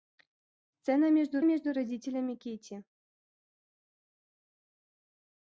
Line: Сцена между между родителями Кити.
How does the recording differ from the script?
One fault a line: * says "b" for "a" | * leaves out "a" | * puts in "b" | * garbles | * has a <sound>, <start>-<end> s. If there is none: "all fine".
all fine